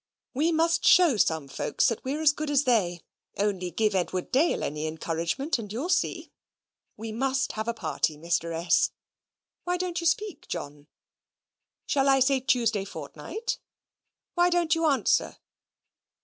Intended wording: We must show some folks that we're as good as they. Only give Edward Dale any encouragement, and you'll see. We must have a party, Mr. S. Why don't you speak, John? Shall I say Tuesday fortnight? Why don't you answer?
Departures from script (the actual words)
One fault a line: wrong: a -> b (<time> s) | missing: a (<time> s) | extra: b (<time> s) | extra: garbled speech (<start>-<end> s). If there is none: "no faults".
no faults